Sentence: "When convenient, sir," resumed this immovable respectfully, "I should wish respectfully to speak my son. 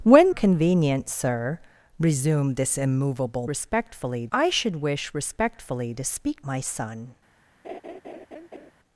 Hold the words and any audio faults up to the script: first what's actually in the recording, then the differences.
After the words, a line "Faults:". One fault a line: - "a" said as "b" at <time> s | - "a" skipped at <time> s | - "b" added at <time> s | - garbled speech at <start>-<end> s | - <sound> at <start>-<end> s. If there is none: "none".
"When convenient, sir," resumed this immovable respectfully, "I should wish respectfully to speak my son.
Faults:
- laugh at 7.6-8.7 s